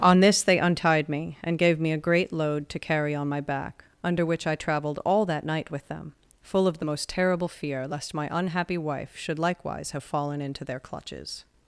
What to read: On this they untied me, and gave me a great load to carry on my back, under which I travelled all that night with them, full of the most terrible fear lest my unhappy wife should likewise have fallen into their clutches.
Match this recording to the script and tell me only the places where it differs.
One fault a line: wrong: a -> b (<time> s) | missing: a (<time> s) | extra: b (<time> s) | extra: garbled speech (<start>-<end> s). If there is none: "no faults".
no faults